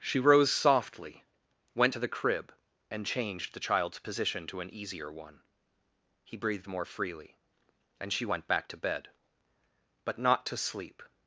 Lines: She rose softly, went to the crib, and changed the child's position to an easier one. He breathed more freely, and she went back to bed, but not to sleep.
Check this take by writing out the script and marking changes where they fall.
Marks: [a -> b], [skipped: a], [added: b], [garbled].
She rose softly, went to the crib, and changed the child's position to an easier one. He breathed more freely, and she went back to bed, but not to sleep.